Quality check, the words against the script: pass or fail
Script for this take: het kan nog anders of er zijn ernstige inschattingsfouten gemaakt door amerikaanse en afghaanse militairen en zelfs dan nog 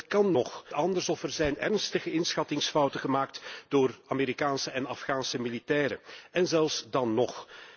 pass